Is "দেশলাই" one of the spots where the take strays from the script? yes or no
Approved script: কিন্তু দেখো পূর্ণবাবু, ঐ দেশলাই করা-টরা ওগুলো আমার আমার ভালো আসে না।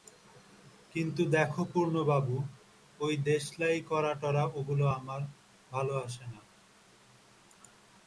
no